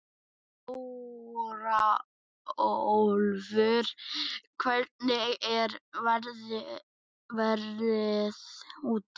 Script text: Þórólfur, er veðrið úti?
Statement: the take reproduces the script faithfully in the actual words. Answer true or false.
false